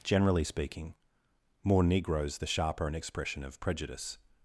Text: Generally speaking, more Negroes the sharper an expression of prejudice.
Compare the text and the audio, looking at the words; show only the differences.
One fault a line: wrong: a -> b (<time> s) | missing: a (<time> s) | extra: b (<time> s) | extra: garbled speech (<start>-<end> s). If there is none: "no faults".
no faults